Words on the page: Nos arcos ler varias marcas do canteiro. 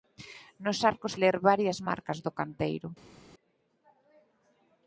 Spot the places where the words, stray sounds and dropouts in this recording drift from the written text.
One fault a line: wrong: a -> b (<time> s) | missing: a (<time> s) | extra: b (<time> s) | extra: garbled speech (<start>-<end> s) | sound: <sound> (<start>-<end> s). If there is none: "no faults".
no faults